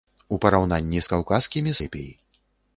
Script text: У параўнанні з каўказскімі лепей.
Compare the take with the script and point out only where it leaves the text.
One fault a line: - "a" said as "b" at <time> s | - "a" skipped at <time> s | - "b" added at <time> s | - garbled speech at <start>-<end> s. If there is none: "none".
none